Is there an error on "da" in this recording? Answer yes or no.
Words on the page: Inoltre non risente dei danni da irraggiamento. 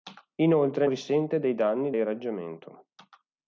yes